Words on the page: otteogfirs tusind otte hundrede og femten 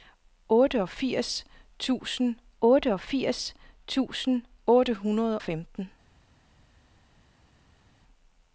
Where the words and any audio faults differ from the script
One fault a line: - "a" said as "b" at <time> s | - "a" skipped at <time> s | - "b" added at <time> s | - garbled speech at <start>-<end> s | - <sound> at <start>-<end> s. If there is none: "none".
- "otteogfirs tusind" added at 2.6 s
- "og" skipped at 5.4 s